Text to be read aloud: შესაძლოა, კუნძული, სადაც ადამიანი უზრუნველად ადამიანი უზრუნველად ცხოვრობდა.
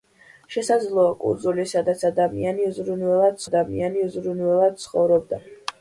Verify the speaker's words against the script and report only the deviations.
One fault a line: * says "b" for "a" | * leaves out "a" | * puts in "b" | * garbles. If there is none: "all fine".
all fine